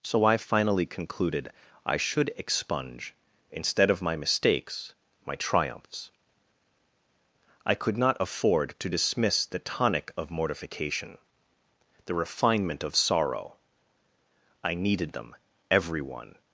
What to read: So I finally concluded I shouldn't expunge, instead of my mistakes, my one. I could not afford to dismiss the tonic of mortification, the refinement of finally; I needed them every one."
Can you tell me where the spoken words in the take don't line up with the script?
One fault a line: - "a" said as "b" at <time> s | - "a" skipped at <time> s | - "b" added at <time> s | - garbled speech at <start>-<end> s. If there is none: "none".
- "shouldn't" said as "should" at 2.0 s
- "one" said as "triumphs" at 5.3 s
- "finally" said as "sorrow" at 13.0 s